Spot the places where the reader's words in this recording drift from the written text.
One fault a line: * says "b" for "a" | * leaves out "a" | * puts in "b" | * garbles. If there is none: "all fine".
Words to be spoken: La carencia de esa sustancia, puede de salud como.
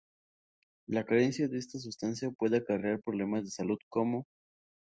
* says "esta" for "esa"
* puts in "acarrear problemas"